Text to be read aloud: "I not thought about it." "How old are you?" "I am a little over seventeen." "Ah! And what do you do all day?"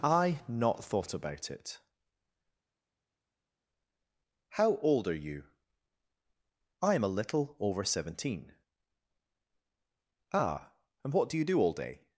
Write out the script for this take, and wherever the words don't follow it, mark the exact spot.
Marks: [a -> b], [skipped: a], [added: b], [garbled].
"I not thought about it." "How old are you?" "I am a little over seventeen." "Ah! And what do you do all day?"